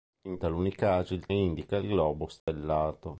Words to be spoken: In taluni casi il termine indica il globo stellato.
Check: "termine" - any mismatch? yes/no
yes